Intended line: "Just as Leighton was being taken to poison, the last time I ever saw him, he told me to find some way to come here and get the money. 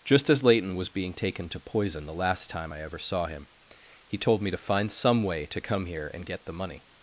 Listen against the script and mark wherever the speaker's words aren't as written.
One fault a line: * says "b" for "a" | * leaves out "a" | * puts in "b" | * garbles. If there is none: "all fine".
all fine